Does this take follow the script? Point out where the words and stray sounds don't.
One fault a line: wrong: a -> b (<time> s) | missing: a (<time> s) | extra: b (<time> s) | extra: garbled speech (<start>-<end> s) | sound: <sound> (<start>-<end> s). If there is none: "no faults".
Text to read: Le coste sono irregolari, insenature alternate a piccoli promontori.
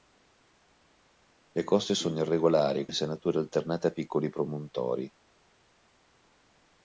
no faults